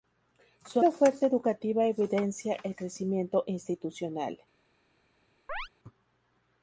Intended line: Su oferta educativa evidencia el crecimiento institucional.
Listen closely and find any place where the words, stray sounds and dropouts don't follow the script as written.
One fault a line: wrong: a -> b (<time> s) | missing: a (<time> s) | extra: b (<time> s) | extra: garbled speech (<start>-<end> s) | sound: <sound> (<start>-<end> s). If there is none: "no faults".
sound: chirp (5.5-5.7 s)